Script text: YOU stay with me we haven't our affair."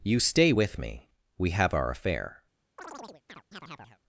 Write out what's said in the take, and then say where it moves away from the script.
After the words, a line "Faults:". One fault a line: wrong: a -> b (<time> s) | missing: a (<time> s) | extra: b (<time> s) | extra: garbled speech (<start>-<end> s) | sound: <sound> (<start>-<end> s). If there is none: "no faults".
YOU stay with me we have our affair."
Faults:
wrong: haven't -> have (1.5 s)
sound: chirp (2.8-4.0 s)